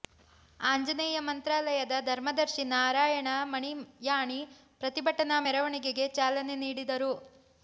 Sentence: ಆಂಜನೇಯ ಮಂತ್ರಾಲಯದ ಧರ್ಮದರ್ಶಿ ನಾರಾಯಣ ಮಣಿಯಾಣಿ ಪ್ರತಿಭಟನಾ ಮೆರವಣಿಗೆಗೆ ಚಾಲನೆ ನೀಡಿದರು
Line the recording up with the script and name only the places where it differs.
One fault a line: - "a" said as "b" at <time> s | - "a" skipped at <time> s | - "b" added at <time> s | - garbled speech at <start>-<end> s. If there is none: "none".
none